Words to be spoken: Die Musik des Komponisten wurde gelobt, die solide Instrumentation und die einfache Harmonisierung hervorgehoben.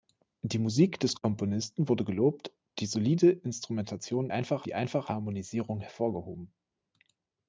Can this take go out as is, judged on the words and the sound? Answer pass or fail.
fail